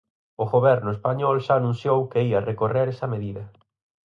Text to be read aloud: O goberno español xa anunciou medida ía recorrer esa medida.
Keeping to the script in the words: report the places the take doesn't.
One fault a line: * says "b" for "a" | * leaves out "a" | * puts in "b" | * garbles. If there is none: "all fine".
* says "que" for "medida"